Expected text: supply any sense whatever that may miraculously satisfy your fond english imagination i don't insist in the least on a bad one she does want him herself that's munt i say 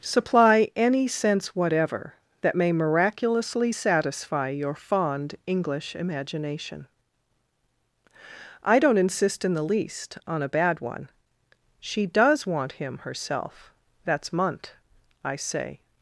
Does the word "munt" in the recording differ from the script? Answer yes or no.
no